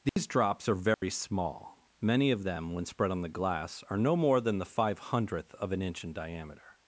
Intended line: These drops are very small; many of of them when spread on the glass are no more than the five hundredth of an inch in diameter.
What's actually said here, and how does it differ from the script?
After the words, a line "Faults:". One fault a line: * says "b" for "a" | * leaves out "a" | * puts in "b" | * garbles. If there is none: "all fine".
These drops are very small; many of them when spread on the glass are no more than the five hundredth of an inch in diameter.
Faults:
* leaves out "of"